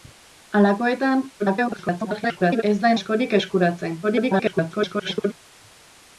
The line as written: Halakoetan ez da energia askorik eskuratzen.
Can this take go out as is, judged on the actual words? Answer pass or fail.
fail